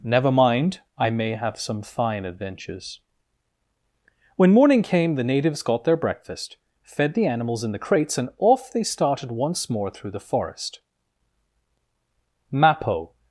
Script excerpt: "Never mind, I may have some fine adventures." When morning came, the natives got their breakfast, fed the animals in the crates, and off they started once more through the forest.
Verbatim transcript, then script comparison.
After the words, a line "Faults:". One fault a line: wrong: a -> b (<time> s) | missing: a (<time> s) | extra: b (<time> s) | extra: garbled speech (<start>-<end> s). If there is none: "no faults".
"Never mind, I may have some fine adventures." When morning came, the natives got their breakfast, fed the animals in the crates, and off they started once more through the forest. Mappo
Faults:
extra: Mappo (12.5 s)